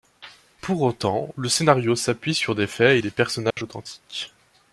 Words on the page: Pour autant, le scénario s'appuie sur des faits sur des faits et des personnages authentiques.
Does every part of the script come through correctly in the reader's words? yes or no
no